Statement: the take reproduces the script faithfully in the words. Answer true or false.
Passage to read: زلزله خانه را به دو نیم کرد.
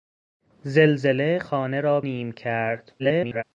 false